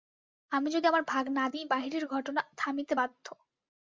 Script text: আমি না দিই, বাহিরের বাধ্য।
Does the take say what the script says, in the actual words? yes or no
no